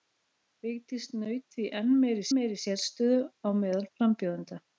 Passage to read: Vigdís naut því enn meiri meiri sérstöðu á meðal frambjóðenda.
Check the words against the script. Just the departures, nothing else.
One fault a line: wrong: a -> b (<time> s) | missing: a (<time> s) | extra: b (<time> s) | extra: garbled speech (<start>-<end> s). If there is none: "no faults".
no faults